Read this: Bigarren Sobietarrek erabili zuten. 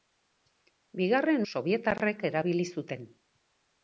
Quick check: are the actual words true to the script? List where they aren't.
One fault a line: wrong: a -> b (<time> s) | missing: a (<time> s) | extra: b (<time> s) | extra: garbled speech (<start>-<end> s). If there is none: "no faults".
no faults